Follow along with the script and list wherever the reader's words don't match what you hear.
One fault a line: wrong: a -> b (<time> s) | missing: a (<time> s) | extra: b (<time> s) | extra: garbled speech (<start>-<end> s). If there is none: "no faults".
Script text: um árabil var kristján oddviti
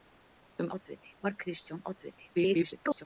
wrong: árabil -> oddviti (0.8 s)
extra: garbled speech (2.3-3.1 s)